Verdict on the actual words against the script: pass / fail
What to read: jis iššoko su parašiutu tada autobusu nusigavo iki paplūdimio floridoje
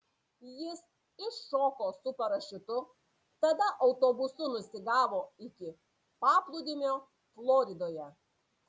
pass